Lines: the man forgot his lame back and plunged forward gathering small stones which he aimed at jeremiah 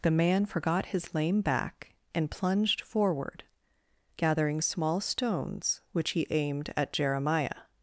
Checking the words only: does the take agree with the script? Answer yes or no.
yes